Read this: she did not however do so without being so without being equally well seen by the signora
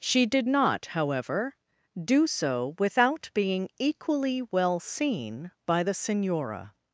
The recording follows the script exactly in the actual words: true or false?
false